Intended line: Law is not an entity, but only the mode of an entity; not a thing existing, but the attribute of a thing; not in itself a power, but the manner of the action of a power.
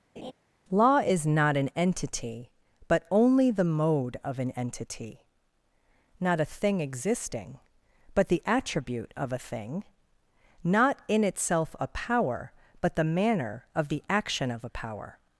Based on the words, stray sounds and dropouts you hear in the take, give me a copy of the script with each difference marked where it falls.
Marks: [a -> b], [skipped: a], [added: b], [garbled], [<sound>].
[laugh] Law is not an entity, but only the mode of an entity; not a thing existing, but the attribute of a thing; not in itself a power, but the manner of the action of a power.